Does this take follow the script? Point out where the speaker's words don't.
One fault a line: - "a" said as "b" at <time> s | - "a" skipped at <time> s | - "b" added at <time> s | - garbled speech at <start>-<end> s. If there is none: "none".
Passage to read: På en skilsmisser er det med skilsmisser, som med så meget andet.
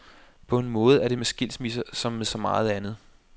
- "skilsmisser" said as "måde" at 0.7 s